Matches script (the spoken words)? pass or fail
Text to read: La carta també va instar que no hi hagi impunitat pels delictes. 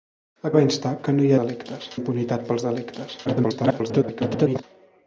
fail